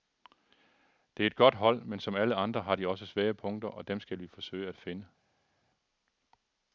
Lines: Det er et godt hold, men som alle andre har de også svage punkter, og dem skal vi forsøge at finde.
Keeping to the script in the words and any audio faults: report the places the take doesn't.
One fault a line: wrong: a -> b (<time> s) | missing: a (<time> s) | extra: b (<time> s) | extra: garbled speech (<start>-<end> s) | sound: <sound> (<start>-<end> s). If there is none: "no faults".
no faults